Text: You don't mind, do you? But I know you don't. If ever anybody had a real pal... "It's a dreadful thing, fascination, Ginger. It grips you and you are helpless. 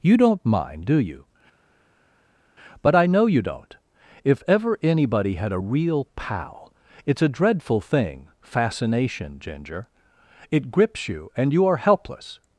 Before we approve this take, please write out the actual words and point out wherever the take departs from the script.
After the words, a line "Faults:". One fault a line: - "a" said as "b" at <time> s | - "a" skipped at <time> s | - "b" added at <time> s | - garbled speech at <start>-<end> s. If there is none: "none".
You don't mind, do you? But I know you don't. If ever anybody had a real pal... "It's a dreadful thing, fascination, Ginger. It grips you and you are helpless.
Faults:
none